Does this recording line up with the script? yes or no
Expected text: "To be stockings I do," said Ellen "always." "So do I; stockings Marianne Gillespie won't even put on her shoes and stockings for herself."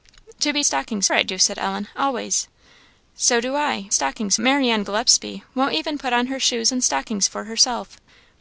yes